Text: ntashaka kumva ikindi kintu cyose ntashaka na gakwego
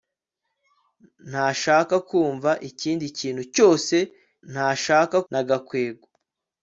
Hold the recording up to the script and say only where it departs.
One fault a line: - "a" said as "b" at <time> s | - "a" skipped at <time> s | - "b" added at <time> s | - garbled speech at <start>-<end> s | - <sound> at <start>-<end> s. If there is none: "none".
none